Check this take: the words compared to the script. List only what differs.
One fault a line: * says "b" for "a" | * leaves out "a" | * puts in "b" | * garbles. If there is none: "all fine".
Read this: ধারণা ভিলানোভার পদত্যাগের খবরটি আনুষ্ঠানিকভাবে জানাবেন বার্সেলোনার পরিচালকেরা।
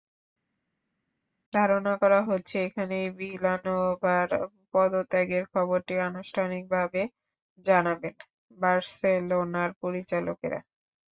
* puts in "করা হচ্ছে এখানেই"